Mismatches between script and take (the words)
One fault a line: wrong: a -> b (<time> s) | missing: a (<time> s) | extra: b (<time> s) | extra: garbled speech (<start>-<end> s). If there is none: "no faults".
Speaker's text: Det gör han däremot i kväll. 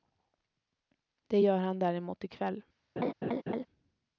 no faults